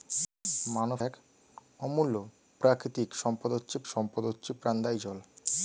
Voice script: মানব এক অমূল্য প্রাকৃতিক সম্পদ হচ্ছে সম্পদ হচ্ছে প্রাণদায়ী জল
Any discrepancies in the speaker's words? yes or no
no